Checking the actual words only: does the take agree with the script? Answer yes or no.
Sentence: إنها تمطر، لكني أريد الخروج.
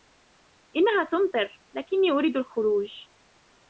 yes